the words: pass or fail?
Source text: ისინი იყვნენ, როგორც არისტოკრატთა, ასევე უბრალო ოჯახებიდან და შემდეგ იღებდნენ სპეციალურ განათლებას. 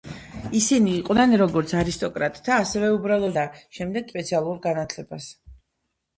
fail